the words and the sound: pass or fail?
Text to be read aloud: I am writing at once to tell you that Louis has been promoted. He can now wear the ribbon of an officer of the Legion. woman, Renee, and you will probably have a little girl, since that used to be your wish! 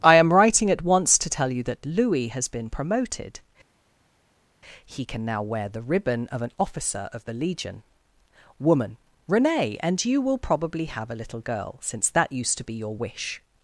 pass